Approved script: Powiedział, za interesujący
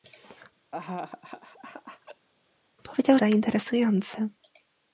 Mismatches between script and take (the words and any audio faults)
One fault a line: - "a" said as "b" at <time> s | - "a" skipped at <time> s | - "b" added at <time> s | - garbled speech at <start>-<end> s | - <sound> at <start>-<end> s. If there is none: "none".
- laugh at 0.7-2.3 s